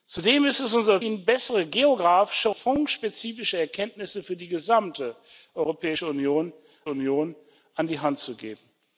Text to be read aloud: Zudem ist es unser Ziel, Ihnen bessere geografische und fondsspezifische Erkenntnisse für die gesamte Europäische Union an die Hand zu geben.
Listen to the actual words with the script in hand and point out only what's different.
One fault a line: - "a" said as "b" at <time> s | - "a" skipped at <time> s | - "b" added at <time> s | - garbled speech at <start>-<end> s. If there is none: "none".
- "Ziel" skipped at 1.0 s
- "und" skipped at 2.5 s
- "Union" added at 6.9 s